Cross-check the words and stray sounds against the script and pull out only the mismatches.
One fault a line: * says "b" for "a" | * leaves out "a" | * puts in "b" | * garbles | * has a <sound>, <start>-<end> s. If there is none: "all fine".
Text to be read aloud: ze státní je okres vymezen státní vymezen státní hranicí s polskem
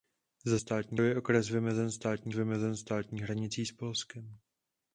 all fine